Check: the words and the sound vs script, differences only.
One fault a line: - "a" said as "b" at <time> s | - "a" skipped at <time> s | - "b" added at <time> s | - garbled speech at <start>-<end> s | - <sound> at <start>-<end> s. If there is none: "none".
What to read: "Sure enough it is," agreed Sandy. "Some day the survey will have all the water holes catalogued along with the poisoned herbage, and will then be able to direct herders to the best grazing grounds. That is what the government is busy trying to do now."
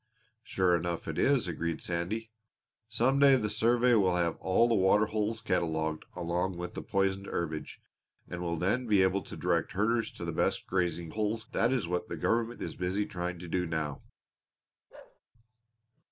- "grounds" said as "holes" at 11.1 s
- bark at 14.9-15.2 s